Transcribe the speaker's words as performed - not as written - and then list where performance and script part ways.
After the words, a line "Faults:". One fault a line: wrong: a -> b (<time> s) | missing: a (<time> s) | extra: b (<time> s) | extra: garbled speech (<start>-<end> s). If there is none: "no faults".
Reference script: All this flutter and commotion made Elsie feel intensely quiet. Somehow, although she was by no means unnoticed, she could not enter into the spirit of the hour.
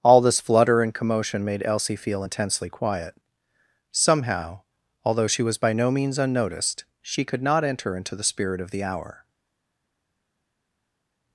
All this flutter and commotion made Elsie feel intensely quiet. Somehow, although she was by no means unnoticed, she could not enter into the spirit of the hour.
Faults:
no faults